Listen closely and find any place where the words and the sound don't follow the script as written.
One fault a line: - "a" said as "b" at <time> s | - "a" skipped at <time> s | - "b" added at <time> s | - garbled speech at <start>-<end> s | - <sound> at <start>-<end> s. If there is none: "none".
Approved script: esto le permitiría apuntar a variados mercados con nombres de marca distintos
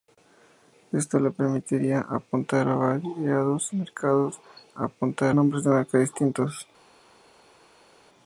- "con" said as "apuntar" at 4.8 s